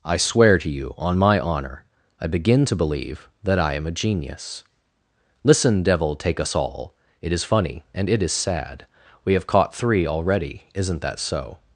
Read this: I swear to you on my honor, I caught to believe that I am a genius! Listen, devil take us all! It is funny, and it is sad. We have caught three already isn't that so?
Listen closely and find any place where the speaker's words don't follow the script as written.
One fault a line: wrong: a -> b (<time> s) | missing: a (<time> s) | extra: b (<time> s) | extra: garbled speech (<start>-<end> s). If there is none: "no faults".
wrong: caught -> begin (2.3 s)